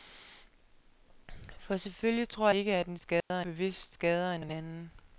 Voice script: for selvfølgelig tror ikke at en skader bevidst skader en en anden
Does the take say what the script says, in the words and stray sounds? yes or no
no